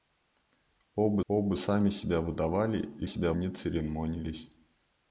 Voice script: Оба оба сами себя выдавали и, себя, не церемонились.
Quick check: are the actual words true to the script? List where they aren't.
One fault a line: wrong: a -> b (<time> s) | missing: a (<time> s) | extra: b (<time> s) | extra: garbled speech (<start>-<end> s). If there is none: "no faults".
no faults